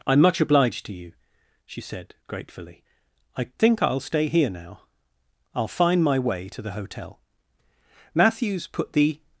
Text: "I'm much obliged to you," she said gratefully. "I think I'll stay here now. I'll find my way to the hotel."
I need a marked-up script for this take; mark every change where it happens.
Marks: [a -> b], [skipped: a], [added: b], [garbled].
"I'm much obliged to you," she said gratefully. "I think I'll stay here now. I'll find my way to the hotel." [added: Matthews put the]